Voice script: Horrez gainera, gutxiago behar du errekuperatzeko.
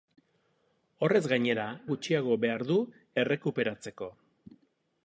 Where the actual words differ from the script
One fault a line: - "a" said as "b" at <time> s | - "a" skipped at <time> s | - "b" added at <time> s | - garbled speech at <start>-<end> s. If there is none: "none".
none